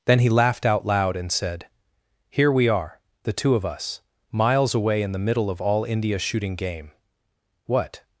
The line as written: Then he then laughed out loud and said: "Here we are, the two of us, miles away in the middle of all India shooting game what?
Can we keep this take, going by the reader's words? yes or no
no